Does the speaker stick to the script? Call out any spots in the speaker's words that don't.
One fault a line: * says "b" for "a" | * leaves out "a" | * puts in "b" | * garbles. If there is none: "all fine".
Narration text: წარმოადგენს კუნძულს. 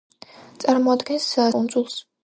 all fine